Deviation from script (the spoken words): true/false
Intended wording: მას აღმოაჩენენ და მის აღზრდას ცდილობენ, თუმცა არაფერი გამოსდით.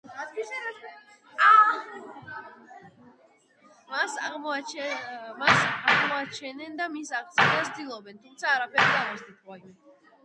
false